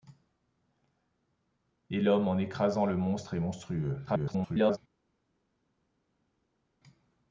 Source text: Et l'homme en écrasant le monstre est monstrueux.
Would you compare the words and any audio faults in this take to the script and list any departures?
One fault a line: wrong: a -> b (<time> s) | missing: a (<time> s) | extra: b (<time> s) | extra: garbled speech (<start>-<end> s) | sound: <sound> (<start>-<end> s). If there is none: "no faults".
extra: garbled speech (4.1-4.8 s)